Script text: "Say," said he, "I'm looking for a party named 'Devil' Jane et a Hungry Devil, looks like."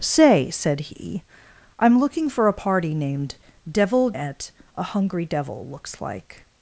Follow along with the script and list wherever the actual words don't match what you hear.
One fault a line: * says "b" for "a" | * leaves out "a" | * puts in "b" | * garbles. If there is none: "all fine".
* leaves out "Jane"